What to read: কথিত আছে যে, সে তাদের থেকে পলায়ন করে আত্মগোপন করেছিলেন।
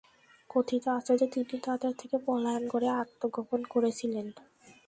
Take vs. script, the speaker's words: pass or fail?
fail